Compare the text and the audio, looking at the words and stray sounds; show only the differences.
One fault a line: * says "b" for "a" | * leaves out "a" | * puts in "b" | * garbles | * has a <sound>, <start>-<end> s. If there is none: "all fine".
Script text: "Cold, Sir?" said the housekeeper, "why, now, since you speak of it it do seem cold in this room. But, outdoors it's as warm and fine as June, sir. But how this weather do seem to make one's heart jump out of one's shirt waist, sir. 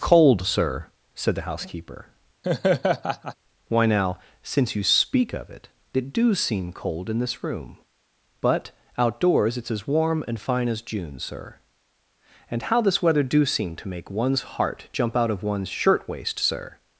* has a laugh, 2.4-3.4 s
* says "And" for "But"